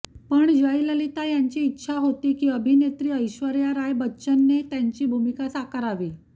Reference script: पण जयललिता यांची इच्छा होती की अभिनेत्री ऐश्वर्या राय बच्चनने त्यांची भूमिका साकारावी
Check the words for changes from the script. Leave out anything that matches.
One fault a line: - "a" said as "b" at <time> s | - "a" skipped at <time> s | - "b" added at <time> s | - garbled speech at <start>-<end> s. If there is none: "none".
none